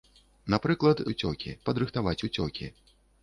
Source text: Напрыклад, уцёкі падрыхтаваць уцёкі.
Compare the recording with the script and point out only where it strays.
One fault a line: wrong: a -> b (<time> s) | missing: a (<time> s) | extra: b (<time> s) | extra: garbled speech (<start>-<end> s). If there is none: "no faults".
no faults